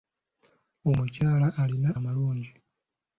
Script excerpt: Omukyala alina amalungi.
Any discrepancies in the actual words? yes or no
no